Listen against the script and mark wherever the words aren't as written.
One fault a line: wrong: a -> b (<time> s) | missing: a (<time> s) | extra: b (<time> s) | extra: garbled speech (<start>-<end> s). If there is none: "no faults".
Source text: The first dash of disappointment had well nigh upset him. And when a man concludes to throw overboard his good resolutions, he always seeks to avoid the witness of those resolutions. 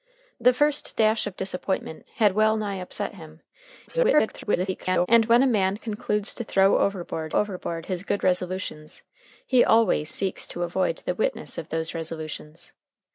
extra: garbled speech (3.9-5.1 s)
extra: overboard (7.3 s)